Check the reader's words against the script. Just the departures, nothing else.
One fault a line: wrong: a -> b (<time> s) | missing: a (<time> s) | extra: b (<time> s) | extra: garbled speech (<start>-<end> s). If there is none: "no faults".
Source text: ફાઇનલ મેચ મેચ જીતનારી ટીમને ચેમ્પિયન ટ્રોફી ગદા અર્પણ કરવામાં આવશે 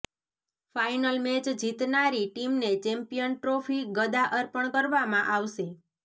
missing: મેચ (1.4 s)